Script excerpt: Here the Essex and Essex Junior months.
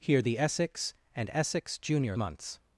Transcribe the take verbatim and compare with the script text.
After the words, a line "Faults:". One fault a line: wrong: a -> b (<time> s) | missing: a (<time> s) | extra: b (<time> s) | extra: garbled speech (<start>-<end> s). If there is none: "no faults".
Here the Essex and Essex Junior months.
Faults:
no faults